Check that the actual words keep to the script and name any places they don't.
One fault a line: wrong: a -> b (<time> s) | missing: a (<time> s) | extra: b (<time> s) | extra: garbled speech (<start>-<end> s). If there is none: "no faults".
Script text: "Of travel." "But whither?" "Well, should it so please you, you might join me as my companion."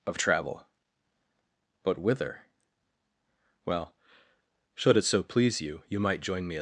missing: as my companion (6.6 s)